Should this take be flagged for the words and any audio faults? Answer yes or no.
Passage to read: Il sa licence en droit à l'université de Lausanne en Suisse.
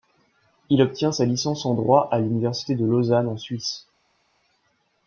yes